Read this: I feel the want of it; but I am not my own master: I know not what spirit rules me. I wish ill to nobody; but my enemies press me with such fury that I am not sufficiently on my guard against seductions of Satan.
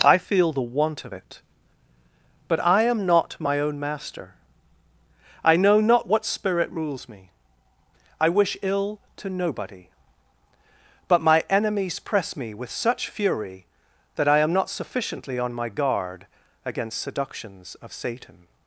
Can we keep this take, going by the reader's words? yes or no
yes